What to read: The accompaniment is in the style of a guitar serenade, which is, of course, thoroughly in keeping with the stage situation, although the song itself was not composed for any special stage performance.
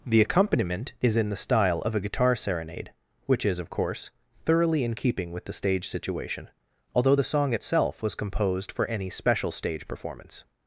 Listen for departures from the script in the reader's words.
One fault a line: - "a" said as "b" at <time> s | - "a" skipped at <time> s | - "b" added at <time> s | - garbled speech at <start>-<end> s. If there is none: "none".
- "not" skipped at 8.1 s